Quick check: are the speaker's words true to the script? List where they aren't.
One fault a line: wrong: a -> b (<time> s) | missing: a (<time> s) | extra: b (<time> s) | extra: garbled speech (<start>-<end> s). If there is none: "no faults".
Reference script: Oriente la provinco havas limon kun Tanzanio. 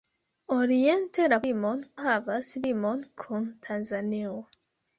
wrong: provinco -> limon (1.5 s)